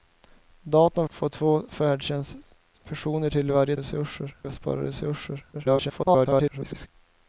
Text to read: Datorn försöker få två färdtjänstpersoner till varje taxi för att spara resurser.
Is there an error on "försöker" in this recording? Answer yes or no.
yes